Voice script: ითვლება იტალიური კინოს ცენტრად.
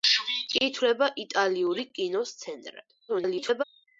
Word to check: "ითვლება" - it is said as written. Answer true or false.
true